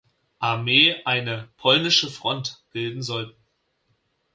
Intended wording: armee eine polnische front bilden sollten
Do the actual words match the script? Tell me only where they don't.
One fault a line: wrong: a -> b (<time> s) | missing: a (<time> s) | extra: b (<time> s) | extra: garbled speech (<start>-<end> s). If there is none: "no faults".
no faults